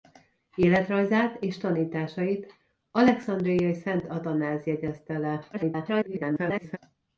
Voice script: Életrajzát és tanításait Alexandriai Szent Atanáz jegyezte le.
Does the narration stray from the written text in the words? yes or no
yes